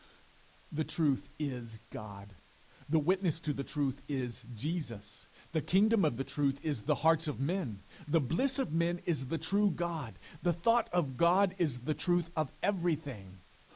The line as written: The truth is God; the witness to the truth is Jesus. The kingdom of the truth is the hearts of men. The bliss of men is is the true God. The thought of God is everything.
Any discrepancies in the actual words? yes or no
yes